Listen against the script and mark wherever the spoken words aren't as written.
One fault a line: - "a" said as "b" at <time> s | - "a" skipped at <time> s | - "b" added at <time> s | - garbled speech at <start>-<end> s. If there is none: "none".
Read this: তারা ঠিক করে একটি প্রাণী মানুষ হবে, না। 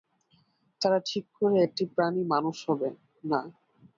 none